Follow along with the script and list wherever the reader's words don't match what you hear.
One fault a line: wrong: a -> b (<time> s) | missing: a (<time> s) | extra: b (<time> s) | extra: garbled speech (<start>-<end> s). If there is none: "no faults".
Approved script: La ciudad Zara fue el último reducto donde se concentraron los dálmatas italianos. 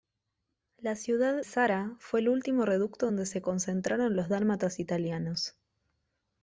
no faults